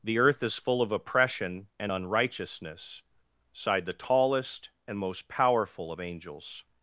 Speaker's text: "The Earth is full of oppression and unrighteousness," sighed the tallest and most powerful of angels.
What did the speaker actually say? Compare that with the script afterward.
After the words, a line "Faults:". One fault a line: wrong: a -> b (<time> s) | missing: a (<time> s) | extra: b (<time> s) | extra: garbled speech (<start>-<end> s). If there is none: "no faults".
"The Earth is full of oppression and unrighteousness," sighed the tallest and most powerful of angels.
Faults:
no faults